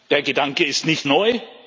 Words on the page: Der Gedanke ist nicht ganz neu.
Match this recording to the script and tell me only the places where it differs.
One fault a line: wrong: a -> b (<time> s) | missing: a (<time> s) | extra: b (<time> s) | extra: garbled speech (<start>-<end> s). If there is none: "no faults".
missing: ganz (1.1 s)